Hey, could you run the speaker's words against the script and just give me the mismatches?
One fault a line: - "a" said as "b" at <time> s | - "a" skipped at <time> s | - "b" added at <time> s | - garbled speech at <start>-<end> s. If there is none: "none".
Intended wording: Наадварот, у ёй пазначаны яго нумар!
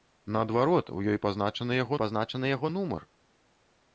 - "пазначаны яго" added at 2.0 s